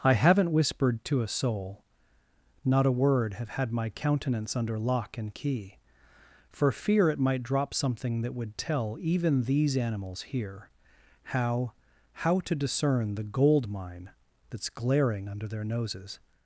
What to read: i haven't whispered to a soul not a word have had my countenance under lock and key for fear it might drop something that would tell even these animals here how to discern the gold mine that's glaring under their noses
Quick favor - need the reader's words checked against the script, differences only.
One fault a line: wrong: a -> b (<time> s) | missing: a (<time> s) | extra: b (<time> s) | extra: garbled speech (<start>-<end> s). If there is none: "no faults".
extra: how (12.1 s)